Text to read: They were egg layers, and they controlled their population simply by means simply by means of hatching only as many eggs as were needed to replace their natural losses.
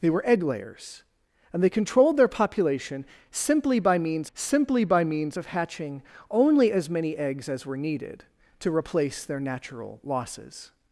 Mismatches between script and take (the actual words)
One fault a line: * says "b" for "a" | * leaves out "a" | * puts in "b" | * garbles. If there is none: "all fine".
all fine